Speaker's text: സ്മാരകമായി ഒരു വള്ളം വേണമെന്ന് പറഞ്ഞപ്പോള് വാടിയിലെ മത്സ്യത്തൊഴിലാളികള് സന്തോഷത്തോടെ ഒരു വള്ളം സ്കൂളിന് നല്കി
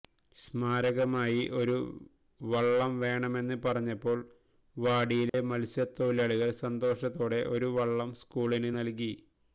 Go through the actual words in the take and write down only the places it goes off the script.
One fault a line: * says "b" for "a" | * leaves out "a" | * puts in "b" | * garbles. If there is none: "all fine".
all fine